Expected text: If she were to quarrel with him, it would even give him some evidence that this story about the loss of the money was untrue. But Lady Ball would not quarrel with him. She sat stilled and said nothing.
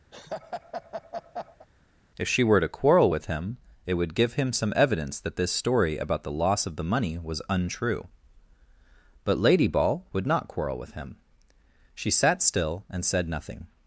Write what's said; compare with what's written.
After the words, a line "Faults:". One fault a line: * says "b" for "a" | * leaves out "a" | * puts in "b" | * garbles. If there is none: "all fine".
If she were to quarrel with him, it would give him some evidence that this story about the loss of the money was untrue. But Lady Ball would not quarrel with him. She sat still and said nothing.
Faults:
* leaves out "even"
* says "still" for "stilled"